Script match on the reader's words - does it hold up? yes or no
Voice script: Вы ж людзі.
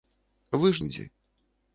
yes